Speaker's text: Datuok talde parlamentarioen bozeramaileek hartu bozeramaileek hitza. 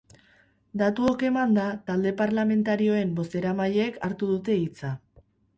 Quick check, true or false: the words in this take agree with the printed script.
false